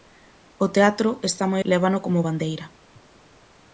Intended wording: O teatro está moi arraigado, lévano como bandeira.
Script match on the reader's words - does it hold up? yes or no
no